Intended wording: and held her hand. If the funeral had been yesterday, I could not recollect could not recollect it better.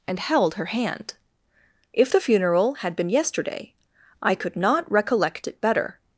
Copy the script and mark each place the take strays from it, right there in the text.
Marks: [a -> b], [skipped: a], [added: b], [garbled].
and held her hand. If the funeral had been yesterday, I could not recollect [skipped: could not recollect] it better.